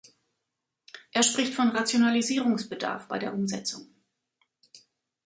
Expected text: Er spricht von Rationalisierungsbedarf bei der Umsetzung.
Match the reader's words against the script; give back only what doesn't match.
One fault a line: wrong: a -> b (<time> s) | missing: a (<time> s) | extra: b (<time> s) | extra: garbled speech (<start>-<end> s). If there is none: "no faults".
no faults